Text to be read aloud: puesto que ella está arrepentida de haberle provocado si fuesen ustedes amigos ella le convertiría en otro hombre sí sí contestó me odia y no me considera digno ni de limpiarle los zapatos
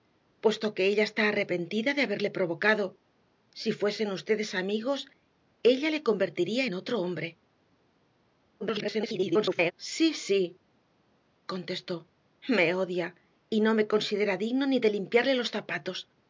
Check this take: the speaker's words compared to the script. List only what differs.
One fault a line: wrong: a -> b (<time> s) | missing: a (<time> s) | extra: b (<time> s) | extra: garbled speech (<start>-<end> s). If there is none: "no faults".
extra: garbled speech (8.6-9.7 s)